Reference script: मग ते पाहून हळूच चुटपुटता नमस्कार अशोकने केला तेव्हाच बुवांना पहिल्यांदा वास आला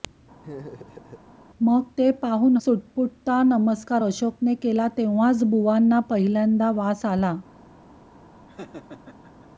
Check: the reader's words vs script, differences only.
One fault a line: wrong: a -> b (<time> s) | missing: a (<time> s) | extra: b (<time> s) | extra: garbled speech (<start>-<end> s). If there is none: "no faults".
missing: हळूच (2.6 s)